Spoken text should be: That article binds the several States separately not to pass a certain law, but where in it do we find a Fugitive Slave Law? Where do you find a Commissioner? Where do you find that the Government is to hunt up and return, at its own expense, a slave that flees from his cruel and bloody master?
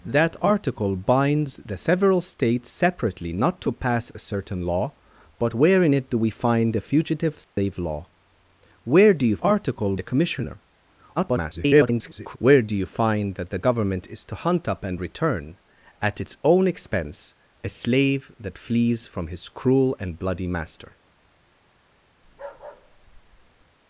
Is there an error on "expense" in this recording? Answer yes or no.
no